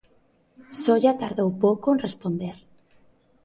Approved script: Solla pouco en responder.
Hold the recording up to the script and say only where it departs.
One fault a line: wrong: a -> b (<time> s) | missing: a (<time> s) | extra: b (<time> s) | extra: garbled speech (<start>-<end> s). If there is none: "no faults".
extra: tardou (1.2 s)